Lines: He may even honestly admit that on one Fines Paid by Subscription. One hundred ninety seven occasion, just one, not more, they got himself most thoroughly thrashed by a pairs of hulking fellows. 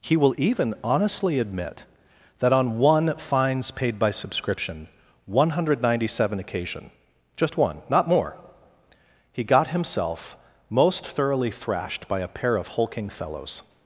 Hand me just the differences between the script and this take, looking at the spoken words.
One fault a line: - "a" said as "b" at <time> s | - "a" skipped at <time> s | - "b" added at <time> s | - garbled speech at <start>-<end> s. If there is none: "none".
- "may" said as "will" at 0.2 s
- "they" said as "he" at 9.3 s
- "pairs" said as "pair" at 12.3 s